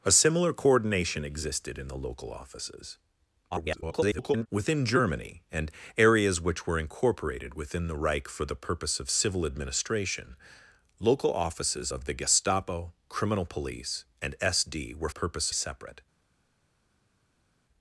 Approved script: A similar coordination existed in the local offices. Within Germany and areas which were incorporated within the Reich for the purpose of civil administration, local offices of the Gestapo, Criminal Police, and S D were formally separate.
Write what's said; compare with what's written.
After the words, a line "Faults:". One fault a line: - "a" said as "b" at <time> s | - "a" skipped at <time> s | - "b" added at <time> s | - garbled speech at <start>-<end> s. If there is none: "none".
A similar coordination existed in the local offices. [garbled] Within Germany and areas which were incorporated within the Reich for the purpose of civil administration, local offices of the Gestapo, Criminal Police, and S D were purpose separate.
Faults:
- garbled speech at 3.5-4.5 s
- "formally" said as "purpose" at 15.1 s